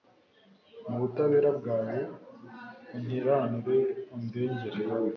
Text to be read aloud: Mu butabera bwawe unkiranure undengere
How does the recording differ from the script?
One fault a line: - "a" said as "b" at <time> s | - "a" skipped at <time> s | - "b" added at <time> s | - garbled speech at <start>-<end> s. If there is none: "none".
none